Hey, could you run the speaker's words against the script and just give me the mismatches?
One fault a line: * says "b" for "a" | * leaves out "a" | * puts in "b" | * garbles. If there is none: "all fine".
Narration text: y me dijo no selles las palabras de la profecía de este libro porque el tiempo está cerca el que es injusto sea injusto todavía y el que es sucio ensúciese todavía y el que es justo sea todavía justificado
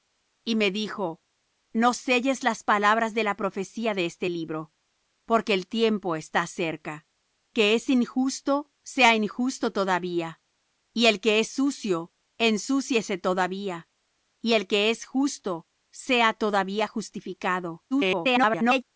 * leaves out "el"
* garbles